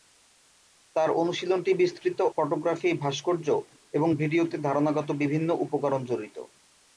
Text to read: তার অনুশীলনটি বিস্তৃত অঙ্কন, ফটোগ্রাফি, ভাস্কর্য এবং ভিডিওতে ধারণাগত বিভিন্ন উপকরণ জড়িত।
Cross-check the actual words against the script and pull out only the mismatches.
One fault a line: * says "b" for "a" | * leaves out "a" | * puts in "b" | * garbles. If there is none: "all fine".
* leaves out "অঙ্কন"